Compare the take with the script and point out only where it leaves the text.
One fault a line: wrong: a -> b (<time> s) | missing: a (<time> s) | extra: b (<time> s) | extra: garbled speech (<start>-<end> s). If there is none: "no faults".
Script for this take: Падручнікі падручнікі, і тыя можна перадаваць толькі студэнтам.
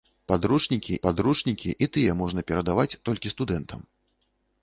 no faults